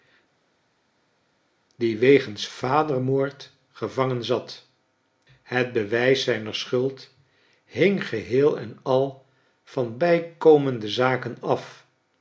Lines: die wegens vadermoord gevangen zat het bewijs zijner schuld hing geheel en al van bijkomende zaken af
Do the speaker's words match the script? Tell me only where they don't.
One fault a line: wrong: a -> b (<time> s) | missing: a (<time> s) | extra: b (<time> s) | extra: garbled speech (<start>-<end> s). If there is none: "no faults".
no faults